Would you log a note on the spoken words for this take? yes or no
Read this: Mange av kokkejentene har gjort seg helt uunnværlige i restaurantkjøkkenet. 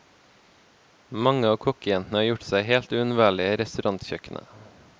no